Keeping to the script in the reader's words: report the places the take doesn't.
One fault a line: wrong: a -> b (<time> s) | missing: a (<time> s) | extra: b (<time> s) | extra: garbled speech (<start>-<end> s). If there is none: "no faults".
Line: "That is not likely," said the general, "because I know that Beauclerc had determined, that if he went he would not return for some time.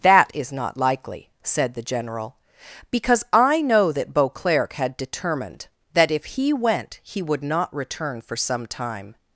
no faults